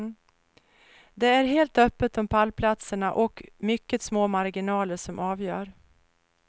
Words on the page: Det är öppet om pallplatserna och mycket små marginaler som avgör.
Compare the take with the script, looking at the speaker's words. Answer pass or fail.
fail